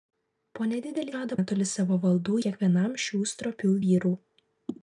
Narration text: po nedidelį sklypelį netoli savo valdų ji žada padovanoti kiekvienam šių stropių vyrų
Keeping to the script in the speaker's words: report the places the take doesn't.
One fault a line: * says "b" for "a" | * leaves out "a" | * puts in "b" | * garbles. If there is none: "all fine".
* says "žada" for "sklypelį"
* leaves out "ji žada padovanoti"